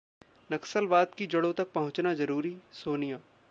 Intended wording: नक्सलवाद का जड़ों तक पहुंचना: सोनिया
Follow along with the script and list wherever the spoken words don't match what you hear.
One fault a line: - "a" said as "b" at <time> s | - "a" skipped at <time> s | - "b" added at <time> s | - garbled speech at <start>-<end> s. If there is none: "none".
- "का" said as "की" at 1.2 s
- "जरूरी" added at 2.1 s